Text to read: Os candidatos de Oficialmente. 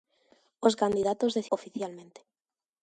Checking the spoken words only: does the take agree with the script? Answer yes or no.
yes